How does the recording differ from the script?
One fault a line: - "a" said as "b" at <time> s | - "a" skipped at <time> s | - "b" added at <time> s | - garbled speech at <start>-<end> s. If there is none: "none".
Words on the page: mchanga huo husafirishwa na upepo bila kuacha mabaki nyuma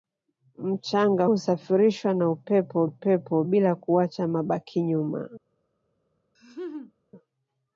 - "huo" skipped at 1.2 s
- "upepo" added at 2.8 s